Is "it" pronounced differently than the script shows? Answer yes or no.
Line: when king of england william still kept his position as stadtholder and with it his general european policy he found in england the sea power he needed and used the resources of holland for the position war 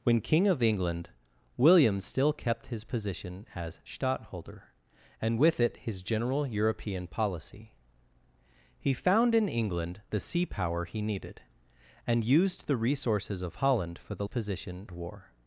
no